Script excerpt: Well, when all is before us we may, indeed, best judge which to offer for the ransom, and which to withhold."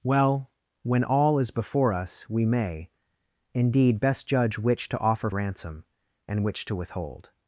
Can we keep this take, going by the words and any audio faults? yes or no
no